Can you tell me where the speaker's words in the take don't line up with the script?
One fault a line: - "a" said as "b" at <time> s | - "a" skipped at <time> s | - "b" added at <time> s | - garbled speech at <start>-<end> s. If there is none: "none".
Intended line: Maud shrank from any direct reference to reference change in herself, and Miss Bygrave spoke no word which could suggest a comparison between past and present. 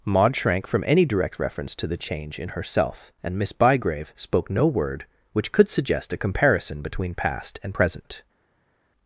- "reference" said as "the" at 1.9 s